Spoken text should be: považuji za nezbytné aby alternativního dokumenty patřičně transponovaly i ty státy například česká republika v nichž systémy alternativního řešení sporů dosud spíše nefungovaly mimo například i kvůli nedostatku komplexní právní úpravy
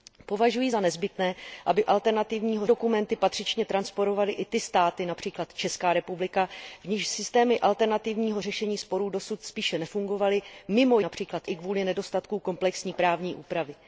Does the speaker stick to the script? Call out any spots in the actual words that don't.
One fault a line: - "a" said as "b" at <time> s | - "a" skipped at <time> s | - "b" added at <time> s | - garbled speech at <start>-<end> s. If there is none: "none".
none